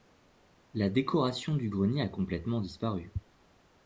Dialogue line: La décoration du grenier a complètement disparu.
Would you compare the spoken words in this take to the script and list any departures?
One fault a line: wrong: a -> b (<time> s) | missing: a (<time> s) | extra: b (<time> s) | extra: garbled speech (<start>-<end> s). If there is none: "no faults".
no faults